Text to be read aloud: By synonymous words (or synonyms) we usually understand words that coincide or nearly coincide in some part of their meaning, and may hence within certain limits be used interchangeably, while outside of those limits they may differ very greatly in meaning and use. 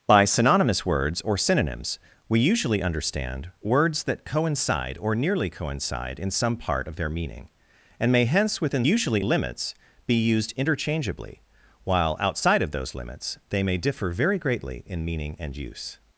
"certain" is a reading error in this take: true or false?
true